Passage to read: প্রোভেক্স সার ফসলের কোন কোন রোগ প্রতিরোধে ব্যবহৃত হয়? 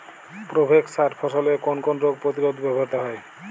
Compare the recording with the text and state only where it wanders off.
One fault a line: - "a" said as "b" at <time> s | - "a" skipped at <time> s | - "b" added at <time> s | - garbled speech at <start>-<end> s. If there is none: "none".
none